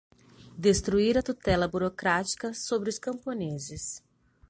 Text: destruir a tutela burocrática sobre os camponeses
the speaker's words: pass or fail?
pass